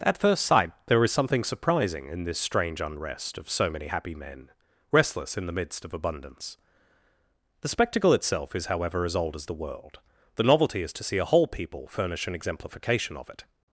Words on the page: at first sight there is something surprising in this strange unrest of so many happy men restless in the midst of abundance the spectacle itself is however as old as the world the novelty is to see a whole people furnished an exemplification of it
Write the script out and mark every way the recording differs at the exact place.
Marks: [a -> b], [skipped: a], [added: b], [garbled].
at first sight there is something surprising in this strange unrest of so many happy men restless in the midst of abundance the spectacle itself is however as old as the world the novelty is to see a whole people [furnished -> furnish] an exemplification of it